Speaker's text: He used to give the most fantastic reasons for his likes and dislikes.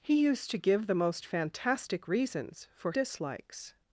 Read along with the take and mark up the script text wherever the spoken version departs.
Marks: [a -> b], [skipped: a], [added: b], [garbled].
He used to give the most fantastic reasons for [skipped: his likes and] dislikes.